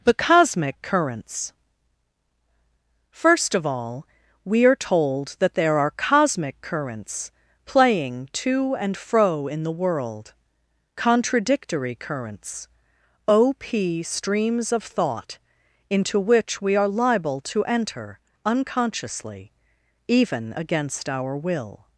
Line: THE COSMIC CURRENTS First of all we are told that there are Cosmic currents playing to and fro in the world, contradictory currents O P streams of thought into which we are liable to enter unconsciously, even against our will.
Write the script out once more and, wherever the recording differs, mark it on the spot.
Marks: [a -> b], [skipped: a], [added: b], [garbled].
THE COSMIC CURRENTS First of all we are told that there are Cosmic currents playing to and fro in the world, contradictory currents O P streams of thought into which we are liable to enter unconsciously, even against our will.